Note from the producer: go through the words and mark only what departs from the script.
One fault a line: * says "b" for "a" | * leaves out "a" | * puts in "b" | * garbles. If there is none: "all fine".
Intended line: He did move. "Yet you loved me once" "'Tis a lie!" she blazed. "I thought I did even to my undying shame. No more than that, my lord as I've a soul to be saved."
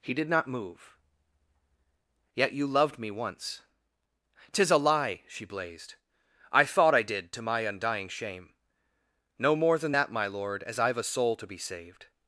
* puts in "not"
* leaves out "even"